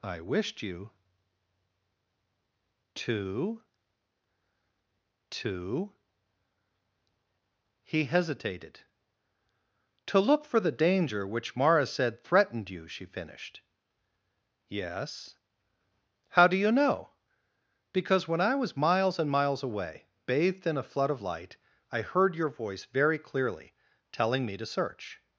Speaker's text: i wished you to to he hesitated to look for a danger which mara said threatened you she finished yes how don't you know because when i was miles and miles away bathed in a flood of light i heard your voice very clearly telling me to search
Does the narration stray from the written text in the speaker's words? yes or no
yes